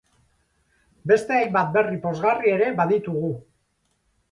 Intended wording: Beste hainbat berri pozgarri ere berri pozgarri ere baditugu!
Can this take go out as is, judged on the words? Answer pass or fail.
fail